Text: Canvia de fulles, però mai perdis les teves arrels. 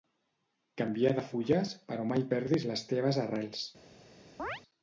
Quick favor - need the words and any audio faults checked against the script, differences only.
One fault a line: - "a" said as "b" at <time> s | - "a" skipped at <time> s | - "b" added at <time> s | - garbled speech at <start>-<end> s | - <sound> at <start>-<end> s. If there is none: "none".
- chirp at 4.4-4.6 s